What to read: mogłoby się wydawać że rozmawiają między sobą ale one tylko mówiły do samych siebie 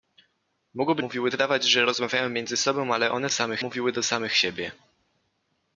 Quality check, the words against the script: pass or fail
fail